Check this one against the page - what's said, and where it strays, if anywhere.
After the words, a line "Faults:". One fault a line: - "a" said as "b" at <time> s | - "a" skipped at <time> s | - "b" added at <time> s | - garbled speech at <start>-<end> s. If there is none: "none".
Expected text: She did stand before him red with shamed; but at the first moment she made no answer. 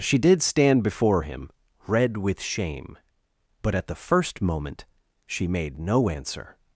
She did stand before him red with shame; but at the first moment she made no answer.
Faults:
- "shamed" said as "shame" at 2.4 s